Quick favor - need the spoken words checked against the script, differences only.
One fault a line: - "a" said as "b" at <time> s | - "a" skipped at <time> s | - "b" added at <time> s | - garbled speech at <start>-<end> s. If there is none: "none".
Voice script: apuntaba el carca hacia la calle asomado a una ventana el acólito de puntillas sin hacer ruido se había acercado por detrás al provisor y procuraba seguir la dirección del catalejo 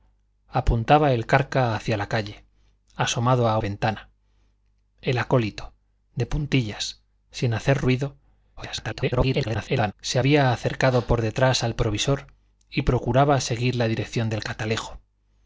- "una" skipped at 3.6 s
- garbled speech at 8.6-9.9 s